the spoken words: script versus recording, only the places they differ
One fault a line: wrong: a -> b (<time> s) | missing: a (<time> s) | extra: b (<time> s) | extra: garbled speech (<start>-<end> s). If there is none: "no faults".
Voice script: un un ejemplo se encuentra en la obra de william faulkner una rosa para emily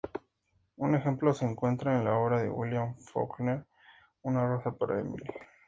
missing: un (0.9 s)